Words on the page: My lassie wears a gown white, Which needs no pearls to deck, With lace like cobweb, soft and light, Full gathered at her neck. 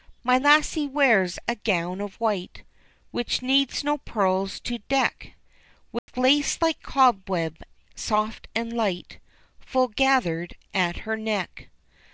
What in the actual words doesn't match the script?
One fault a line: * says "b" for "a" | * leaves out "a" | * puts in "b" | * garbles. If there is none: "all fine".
* puts in "of"